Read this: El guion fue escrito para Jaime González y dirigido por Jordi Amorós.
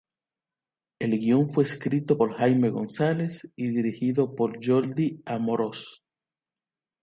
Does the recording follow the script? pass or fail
fail